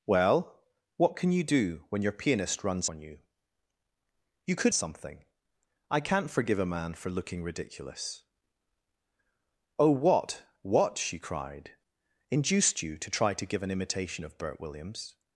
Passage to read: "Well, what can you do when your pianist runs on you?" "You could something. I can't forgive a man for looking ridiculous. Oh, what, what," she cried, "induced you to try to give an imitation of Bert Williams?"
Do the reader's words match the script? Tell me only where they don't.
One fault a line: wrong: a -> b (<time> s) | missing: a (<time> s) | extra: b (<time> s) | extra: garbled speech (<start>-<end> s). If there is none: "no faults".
no faults